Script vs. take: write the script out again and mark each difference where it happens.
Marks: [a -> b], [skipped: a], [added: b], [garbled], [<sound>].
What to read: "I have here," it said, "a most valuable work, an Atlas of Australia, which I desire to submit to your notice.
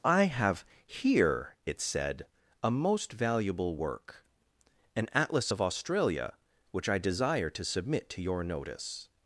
"I have here," it said, "a most valuable work, an Atlas of Australia, which I desire to submit to your notice.